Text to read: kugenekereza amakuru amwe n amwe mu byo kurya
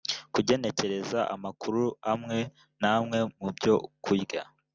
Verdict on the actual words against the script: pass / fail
pass